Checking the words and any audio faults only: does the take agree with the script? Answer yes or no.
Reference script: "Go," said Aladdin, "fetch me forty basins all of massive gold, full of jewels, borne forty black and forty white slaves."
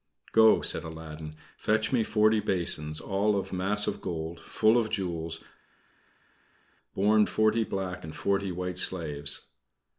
yes